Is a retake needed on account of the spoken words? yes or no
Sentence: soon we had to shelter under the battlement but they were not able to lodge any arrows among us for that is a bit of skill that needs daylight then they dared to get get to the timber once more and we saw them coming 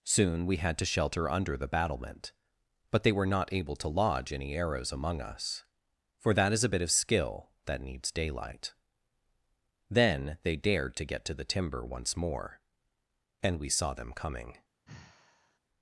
yes